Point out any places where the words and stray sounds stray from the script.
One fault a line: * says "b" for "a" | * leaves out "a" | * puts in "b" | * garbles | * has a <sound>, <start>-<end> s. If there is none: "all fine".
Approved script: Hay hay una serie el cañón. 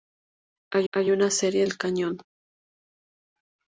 all fine